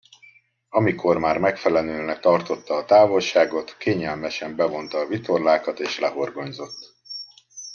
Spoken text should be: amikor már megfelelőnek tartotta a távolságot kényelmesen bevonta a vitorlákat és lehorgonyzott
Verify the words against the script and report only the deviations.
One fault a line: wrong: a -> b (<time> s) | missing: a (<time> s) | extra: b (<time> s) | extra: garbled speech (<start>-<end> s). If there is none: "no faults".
no faults